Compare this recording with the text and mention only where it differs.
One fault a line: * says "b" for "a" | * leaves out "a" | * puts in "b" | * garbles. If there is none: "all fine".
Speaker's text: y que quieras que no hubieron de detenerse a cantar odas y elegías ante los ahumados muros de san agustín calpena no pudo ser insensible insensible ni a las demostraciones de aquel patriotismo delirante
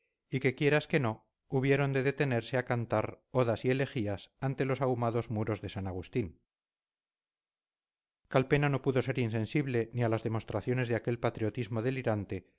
* leaves out "insensible"